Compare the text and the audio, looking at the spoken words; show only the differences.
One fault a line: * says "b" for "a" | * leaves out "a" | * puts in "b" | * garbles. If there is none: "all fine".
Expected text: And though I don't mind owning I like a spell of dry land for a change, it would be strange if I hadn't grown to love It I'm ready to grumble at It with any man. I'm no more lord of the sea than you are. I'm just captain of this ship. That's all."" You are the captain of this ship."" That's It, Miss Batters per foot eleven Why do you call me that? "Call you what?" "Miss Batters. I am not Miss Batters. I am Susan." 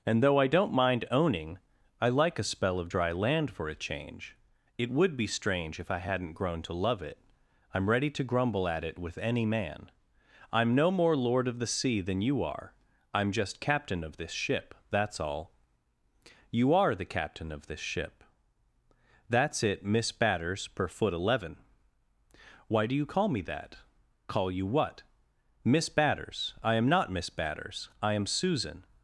all fine